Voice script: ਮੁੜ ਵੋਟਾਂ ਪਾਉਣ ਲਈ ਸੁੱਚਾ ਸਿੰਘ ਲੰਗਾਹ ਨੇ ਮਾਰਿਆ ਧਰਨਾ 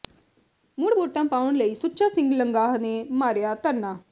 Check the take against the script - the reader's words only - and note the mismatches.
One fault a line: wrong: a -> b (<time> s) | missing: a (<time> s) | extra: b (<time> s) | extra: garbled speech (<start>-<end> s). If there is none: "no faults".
no faults